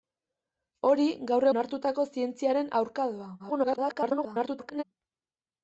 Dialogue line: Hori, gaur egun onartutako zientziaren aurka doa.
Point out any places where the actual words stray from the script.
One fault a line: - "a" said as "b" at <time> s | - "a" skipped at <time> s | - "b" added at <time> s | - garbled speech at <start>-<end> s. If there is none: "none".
- "egun" skipped at 1.5 s
- garbled speech at 3.4-4.8 s